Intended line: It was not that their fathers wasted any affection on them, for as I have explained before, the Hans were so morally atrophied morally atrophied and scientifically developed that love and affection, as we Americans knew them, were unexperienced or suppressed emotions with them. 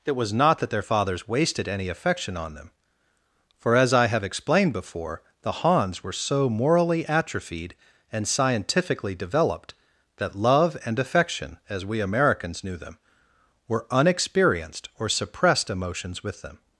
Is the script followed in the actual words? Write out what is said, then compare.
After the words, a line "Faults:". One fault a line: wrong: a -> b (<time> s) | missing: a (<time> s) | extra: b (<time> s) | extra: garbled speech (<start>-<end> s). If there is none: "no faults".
It was not that their fathers wasted any affection on them, for as I have explained before, the Hans were so morally atrophied and scientifically developed that love and affection, as we Americans knew them, were unexperienced or suppressed emotions with them.
Faults:
missing: morally atrophied (7.7 s)